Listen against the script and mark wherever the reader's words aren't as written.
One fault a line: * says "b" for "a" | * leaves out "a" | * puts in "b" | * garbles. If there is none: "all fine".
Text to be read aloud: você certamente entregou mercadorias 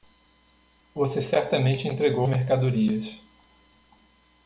all fine